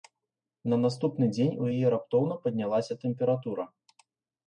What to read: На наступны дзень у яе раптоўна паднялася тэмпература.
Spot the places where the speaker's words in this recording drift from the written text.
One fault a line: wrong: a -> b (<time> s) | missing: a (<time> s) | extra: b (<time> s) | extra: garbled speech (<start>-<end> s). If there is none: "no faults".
no faults